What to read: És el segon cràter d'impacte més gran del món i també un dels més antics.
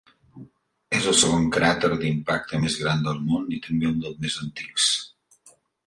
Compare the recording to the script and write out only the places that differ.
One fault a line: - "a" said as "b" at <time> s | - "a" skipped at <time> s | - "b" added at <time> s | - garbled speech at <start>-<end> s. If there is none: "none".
none